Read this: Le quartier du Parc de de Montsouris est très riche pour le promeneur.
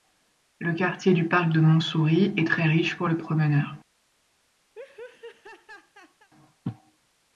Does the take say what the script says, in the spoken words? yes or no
no